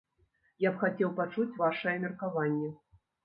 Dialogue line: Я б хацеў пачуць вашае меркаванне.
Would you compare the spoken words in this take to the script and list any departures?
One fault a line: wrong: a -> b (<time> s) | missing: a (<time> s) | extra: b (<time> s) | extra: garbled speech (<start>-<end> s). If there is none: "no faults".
no faults